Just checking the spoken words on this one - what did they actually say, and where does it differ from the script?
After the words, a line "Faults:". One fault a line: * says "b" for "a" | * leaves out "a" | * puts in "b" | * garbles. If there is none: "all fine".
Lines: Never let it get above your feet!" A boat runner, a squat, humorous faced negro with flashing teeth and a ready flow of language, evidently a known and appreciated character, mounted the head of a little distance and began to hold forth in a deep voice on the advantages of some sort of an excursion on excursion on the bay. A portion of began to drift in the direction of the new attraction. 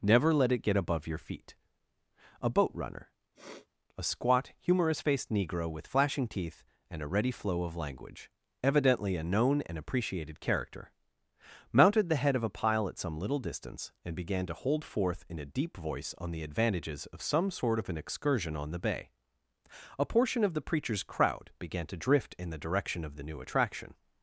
Never let it get above your feet!" A boat runner, a squat, humorous faced negro with flashing teeth and a ready flow of language, evidently a known and appreciated character, mounted the head of a pile at some little distance and began to hold forth in a deep voice on the advantages of some sort of an excursion on the bay. A portion of the preacher's crowd began to drift in the direction of the new attraction.
Faults:
* puts in "pile at some"
* leaves out "excursion on"
* puts in "the preacher's crowd"